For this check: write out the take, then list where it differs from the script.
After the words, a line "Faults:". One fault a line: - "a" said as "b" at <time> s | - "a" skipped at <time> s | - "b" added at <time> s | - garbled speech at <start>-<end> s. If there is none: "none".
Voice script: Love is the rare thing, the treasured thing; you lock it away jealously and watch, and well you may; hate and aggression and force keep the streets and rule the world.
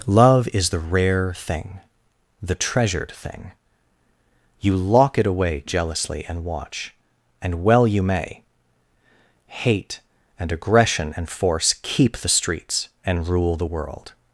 Love is the rare thing, the treasured thing; you lock it away jealously and watch, and well you may; hate and aggression and force keep the streets and rule the world.
Faults:
none